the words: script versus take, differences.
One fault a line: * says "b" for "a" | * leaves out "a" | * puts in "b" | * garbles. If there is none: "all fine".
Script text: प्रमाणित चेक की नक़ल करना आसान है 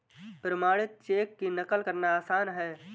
all fine